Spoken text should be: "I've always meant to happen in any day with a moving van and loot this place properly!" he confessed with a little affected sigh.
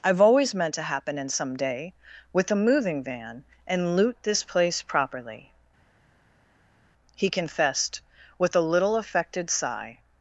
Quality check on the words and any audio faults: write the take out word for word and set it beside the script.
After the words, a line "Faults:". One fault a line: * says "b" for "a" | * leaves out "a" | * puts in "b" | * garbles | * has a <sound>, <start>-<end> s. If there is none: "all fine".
"I've always meant to happen in some day with a moving van and loot this place properly!" he confessed with a little affected sigh.
Faults:
* says "some" for "any"